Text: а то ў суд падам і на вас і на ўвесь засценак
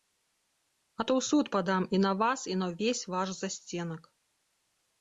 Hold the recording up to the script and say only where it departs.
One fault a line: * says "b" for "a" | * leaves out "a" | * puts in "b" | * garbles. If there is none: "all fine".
* puts in "ваш"